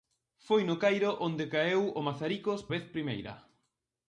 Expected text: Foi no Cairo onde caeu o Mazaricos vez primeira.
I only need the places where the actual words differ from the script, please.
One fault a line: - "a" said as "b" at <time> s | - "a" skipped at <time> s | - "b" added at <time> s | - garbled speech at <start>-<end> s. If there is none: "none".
none